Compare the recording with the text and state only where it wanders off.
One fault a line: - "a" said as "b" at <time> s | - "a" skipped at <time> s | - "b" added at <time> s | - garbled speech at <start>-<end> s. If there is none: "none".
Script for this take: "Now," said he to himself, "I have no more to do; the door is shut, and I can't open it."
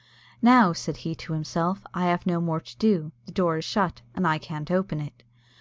none